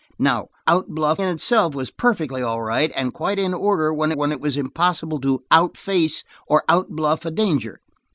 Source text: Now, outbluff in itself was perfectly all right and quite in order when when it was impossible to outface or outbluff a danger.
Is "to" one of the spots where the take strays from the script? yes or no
no